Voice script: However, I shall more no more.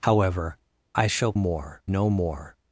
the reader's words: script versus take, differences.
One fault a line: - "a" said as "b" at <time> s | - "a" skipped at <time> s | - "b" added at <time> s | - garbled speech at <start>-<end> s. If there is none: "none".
none